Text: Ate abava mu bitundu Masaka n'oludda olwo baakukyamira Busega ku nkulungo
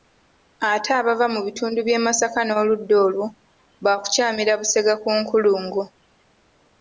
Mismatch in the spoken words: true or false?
true